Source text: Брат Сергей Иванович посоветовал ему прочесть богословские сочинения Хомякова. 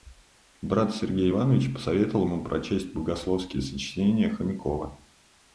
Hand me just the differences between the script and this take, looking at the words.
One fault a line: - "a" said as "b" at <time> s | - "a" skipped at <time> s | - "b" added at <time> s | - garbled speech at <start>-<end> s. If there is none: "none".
none